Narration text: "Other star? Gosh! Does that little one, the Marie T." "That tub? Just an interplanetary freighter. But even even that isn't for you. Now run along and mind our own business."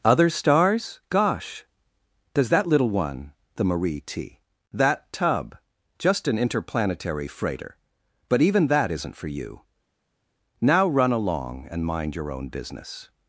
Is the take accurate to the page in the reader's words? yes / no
no